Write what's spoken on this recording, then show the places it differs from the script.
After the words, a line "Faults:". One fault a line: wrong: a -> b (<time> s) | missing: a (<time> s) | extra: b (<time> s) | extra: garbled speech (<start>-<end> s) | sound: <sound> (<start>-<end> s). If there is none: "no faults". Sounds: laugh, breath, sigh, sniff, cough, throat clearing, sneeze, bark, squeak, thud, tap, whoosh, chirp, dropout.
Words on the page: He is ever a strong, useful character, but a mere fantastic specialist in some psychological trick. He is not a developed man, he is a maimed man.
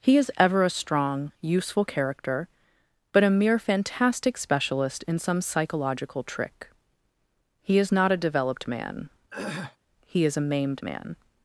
He is ever a strong, useful character, but a mere fantastic specialist in some psychological trick. He is not a developed man, he is a maimed man.
Faults:
sound: throat clearing (9.3-9.8 s)